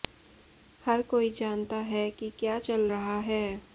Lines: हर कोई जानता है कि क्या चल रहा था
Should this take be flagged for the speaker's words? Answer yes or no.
yes